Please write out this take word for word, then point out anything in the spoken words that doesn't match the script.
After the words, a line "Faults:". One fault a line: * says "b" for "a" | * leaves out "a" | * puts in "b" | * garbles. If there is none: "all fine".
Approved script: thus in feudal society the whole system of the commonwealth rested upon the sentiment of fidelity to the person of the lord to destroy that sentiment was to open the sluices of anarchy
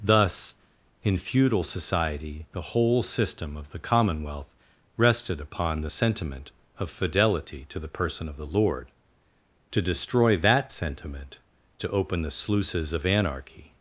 thus in feudal society the whole system of the commonwealth rested upon the sentiment of fidelity to the person of the lord to destroy that sentiment to open the sluices of anarchy
Faults:
* leaves out "was"